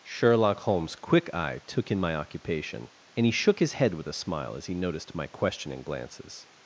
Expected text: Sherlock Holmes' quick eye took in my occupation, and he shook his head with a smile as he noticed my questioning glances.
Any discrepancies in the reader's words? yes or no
no